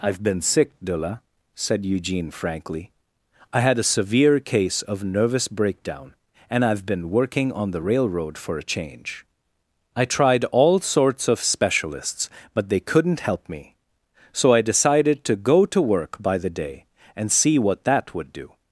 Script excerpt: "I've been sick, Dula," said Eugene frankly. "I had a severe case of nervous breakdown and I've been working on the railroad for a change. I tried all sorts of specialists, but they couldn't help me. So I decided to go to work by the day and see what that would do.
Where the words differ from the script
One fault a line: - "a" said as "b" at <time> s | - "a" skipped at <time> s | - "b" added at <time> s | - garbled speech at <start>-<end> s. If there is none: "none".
none